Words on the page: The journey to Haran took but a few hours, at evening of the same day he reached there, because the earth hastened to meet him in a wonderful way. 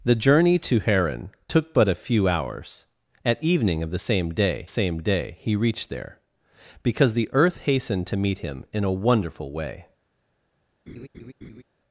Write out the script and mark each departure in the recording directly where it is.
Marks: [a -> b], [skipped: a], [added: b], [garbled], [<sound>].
The journey to Haran took but a few hours, at evening of the same day [added: same day] he reached there, because the earth hastened to meet him in a wonderful way. [laugh]